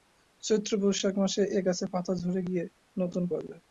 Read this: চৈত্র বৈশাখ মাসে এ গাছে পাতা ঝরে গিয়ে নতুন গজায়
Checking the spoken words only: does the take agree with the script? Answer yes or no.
yes